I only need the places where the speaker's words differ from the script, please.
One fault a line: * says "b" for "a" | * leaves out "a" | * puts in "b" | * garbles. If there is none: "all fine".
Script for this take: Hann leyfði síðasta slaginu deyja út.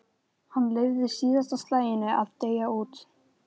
* puts in "að"